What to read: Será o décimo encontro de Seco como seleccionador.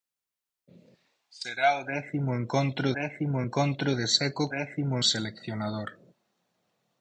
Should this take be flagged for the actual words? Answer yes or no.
yes